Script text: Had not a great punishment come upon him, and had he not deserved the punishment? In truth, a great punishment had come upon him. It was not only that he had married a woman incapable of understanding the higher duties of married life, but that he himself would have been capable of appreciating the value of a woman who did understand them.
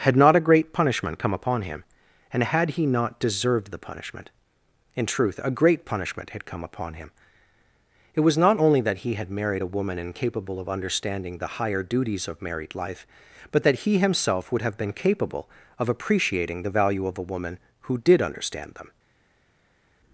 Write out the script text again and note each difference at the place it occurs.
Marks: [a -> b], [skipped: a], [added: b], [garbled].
Had not a great punishment come upon him, and had he not deserved the punishment? In truth, a great punishment had come upon him. It was not only that he had married a woman incapable of understanding the higher duties of married life, but that he himself would have been capable of appreciating the value of a woman who did understand them.